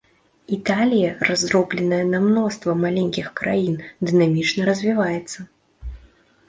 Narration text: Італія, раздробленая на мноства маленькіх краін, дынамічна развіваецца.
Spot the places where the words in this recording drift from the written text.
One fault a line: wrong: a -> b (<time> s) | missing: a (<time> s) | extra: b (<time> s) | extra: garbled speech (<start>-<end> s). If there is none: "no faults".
no faults